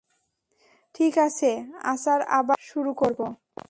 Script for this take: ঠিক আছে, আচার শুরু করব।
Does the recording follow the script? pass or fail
fail